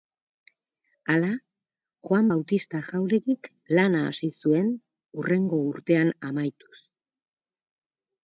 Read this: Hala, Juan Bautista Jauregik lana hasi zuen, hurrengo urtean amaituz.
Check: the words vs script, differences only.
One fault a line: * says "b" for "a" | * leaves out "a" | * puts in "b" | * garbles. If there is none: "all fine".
all fine